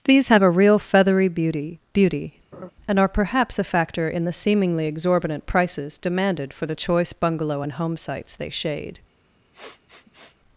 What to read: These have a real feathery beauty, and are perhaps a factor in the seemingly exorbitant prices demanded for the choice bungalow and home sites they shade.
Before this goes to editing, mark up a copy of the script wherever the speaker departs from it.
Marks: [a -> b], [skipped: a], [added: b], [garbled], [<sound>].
These have a real feathery beauty, [added: beauty] [laugh] and are perhaps a factor in the seemingly exorbitant prices demanded for the choice bungalow and home sites they shade. [sniff]